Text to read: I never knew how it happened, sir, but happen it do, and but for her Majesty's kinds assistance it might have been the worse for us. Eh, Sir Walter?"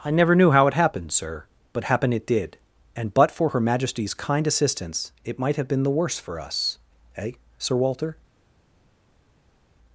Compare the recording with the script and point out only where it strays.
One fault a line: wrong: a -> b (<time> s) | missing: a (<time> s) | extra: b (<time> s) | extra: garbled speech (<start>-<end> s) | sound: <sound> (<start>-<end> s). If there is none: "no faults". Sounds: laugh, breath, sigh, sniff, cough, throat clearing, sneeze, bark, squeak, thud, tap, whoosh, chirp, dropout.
wrong: do -> did (2.2 s)
wrong: kinds -> kind (4.2 s)